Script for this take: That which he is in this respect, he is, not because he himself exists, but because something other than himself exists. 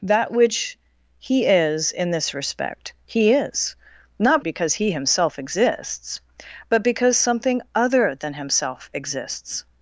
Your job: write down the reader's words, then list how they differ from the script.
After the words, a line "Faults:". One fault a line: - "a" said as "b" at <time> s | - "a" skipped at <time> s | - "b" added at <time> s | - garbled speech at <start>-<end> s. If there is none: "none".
That which he is in this respect, he is, not because he himself exists, but because something other than himself exists.
Faults:
none